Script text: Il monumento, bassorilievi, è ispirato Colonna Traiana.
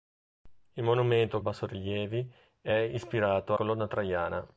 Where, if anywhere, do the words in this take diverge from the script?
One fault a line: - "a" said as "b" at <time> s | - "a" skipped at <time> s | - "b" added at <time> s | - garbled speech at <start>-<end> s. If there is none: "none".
none